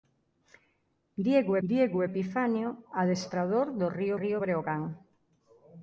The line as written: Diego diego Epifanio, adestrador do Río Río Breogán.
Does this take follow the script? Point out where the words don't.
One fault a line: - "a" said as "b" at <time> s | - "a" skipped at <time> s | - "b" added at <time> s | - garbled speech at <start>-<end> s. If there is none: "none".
none